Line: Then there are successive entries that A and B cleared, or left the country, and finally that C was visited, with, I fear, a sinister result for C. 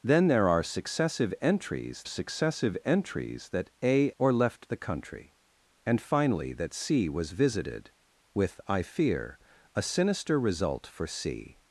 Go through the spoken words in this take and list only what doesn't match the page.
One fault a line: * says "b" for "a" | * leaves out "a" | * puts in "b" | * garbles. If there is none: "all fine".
* puts in "successive entries"
* leaves out "and B cleared"